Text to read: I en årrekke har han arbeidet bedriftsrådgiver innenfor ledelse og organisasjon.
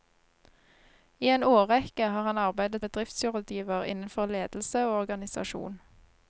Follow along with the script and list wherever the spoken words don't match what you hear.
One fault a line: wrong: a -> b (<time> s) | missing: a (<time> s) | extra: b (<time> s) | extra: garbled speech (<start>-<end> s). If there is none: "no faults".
no faults